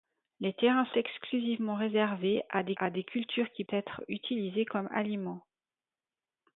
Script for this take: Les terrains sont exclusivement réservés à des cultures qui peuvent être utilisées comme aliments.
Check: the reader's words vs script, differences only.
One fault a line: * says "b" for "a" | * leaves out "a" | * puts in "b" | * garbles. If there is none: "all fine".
* leaves out "sont"
* puts in "à des"
* leaves out "peuvent"